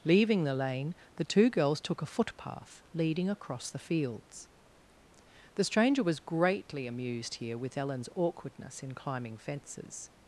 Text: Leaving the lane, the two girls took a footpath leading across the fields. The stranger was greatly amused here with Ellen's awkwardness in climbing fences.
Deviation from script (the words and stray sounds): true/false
false